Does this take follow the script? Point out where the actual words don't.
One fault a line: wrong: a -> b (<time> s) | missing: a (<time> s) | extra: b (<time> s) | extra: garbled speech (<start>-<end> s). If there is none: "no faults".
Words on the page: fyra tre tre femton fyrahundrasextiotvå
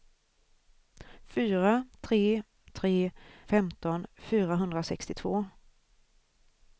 no faults